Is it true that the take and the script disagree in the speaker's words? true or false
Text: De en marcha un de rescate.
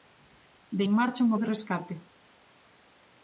false